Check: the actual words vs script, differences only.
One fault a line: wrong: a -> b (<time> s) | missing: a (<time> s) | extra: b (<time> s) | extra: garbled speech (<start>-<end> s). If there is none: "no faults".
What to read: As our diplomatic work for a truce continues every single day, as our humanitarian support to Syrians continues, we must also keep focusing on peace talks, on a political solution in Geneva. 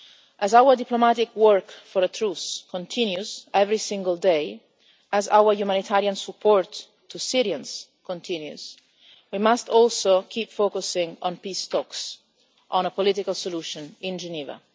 no faults